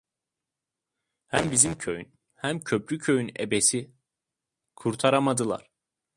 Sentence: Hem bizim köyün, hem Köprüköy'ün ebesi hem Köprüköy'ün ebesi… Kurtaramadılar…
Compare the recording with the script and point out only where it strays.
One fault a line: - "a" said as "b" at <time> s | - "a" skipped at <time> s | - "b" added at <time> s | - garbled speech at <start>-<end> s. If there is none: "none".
- "hem Köprüköy'ün ebesi" skipped at 3.9 s